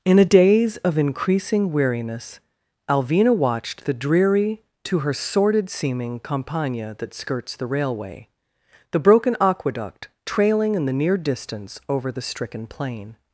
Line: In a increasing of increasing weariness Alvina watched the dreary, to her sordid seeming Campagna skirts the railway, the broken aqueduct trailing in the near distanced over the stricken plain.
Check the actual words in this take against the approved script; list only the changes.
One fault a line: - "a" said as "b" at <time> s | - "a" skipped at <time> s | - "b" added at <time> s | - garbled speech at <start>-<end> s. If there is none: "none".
- "increasing" said as "daze" at 0.2 s
- "that" added at 7.0 s
- "distanced" said as "distance" at 11.2 s